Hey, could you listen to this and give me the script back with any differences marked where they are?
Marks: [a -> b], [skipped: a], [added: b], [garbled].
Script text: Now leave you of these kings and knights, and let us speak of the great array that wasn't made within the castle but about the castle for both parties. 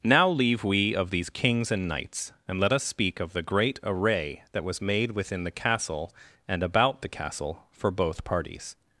Now leave [you -> we] of these kings and knights, and let us speak of the great array that [wasn't -> was] made within the castle [but -> and] about the castle for both parties.